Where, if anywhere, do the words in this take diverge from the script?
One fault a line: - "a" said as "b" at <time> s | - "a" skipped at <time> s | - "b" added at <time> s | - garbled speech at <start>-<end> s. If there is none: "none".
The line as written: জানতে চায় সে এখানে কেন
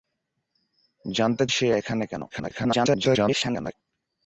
- "চায়" skipped at 1.4 s
- garbled speech at 2.3-3.8 s